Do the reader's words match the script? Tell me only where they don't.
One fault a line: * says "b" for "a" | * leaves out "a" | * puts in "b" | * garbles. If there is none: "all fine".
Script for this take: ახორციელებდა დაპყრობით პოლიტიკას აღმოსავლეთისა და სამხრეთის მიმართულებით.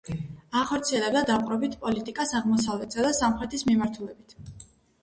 all fine